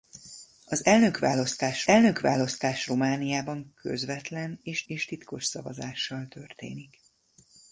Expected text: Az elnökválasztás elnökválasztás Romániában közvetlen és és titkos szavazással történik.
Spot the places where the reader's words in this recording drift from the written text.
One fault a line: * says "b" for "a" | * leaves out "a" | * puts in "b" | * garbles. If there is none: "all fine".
all fine